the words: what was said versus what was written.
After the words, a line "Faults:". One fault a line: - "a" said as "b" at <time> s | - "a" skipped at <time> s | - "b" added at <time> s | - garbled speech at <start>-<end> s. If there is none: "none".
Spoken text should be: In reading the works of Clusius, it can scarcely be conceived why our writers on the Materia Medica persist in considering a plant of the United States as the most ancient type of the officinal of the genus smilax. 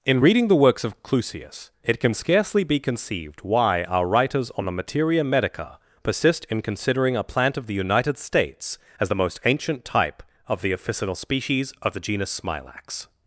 In reading the works of Clusius, it can scarcely be conceived why our writers on the Materia Medica persist in considering a plant of the United States as the most ancient type of the officinal species of the genus smilax.
Faults:
- "species" added at 11.2 s